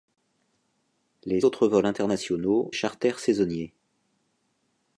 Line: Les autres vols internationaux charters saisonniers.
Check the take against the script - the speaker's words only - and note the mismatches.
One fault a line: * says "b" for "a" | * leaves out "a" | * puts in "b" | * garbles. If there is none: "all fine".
all fine